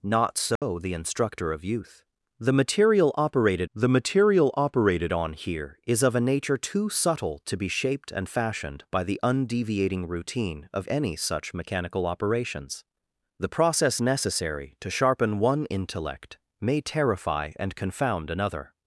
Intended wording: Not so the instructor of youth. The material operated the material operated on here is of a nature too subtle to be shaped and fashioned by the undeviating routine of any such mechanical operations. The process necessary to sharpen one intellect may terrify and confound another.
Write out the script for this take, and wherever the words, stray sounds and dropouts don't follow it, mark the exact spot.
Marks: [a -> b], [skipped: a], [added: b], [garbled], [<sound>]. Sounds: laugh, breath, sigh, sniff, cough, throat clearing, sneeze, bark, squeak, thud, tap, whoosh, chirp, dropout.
Not so [dropout] the instructor of youth. The material operated the material operated on here is of a nature too subtle to be shaped and fashioned by the undeviating routine of any such mechanical operations. The process necessary to sharpen one intellect may terrify and confound another.